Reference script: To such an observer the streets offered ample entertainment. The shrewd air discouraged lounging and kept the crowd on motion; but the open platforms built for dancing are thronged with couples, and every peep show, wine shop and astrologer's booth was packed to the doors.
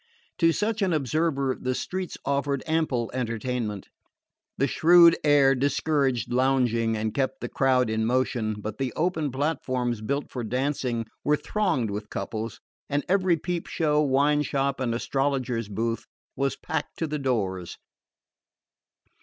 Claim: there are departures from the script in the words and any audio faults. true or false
true